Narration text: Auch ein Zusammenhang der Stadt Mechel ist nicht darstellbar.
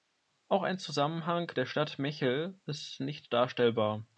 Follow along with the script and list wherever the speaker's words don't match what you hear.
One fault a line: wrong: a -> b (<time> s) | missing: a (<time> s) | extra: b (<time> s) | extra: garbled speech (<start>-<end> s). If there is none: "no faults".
no faults